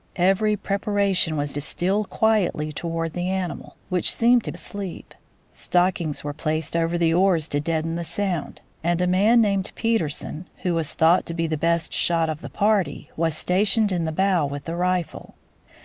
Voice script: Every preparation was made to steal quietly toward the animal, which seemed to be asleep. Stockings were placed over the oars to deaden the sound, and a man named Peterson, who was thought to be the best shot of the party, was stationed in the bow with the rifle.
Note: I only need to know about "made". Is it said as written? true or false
false